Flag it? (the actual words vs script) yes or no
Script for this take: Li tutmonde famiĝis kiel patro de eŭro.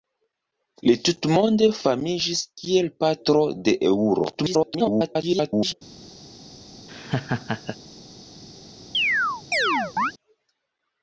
yes